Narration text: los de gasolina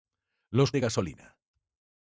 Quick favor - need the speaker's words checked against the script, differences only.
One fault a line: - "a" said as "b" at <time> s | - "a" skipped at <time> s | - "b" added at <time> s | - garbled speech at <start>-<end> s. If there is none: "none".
none